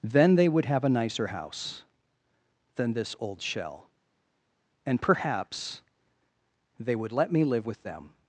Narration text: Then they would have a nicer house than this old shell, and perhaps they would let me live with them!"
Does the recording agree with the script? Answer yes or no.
yes